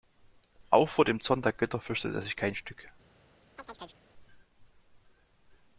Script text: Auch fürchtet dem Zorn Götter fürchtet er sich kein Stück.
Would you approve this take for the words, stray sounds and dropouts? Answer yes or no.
no